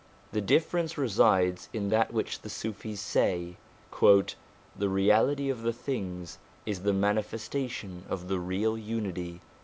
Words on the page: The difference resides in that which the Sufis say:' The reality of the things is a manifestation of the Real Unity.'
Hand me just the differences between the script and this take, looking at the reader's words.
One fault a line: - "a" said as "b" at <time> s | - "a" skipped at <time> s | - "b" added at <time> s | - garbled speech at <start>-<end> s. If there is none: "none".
- "a" said as "the" at 6.8 s